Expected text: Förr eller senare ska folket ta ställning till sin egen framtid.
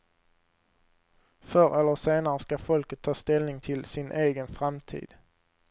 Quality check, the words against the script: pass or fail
pass